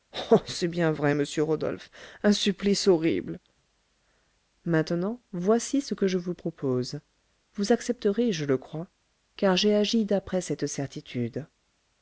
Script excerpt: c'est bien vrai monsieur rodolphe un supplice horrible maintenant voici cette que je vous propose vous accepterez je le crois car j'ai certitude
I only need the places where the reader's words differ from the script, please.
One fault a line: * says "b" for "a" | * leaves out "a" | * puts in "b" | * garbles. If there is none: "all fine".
* says "ce" for "cette"
* puts in "agi d'après cette"